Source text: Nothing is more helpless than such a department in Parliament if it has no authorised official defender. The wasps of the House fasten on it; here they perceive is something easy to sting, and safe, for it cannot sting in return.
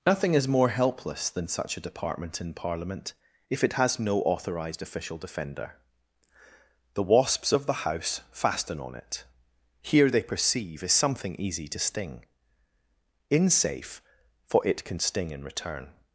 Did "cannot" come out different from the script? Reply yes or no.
yes